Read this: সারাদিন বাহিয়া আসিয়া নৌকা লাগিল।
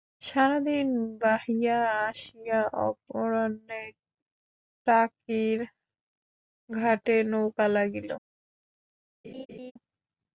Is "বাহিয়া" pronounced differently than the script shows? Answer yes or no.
no